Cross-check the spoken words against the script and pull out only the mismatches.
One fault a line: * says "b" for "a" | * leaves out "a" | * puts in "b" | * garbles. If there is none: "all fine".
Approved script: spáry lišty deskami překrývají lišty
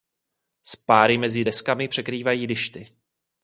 * says "mezi" for "lišty"